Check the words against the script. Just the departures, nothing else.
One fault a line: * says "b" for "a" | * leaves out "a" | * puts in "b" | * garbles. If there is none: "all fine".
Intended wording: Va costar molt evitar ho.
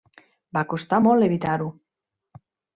all fine